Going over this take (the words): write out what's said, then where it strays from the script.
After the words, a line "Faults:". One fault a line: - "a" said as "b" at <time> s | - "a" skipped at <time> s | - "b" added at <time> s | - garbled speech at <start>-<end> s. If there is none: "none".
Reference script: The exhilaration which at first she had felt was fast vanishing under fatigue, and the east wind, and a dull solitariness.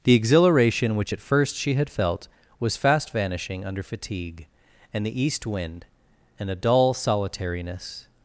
The exhilaration which at first she had felt was fast vanishing under fatigue, and the east wind, and a dull solitariness.
Faults:
none